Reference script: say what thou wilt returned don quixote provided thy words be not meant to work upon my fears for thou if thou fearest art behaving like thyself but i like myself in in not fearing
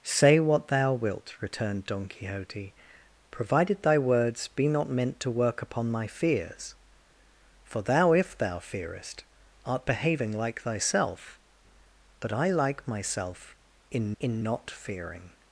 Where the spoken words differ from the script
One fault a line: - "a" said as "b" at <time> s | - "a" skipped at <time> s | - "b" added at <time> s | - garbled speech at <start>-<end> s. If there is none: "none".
none